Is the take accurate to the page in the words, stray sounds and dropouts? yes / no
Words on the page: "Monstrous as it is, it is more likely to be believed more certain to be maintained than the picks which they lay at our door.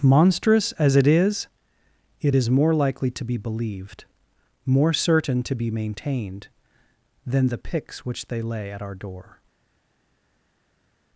yes